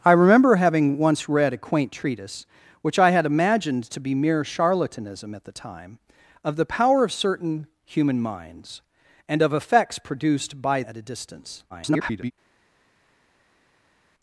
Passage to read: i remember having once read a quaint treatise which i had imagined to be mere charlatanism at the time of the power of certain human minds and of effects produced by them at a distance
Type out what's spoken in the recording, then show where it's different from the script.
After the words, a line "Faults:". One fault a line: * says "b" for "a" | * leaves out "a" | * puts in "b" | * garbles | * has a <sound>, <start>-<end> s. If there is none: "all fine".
i remember having once read a quaint treatise which i had imagined to be mere charlatanism at the time of the power of certain human minds and of effects produced by at a distance [garbled]
Faults:
* leaves out "them"
* garbles